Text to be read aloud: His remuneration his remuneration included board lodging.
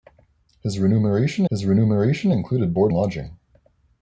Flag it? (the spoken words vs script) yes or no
no